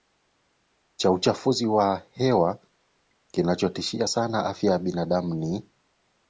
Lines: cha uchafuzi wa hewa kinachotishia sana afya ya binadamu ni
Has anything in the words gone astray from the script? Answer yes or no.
no